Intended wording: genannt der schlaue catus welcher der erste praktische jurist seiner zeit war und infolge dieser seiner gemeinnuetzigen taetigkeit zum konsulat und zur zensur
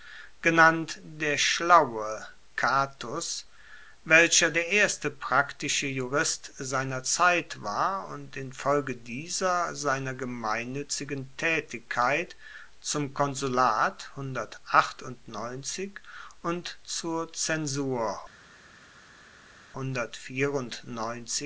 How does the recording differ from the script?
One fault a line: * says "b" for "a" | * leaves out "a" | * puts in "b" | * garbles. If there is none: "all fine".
all fine